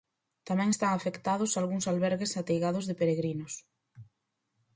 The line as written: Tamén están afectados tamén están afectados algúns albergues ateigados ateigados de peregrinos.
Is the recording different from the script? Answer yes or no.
yes